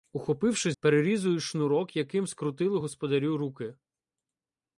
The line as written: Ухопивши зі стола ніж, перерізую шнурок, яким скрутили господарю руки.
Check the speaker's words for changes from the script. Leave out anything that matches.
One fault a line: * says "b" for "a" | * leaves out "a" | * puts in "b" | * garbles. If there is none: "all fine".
* leaves out "зі стола ніж"